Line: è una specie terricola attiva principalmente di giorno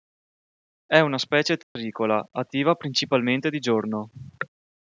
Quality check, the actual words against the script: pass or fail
pass